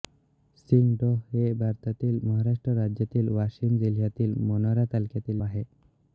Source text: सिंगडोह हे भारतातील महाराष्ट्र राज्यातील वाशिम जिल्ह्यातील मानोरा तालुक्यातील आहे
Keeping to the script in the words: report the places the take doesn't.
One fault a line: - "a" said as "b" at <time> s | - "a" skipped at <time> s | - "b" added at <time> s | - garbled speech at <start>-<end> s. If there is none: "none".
none